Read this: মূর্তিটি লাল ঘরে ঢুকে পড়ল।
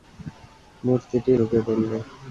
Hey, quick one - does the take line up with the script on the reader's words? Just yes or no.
no